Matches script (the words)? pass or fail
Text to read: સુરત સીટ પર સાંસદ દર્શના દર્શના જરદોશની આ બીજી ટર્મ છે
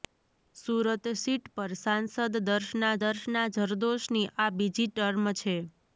pass